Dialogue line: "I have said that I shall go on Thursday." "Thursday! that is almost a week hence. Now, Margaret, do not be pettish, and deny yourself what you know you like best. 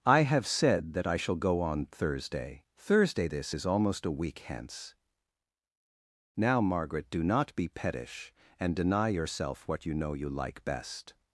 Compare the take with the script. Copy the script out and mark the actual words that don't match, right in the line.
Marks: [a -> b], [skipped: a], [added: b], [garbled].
"I have said that I shall go on Thursday." "Thursday! [that -> this] is almost a week hence. Now, Margaret, do not be pettish, and deny yourself what you know you like best.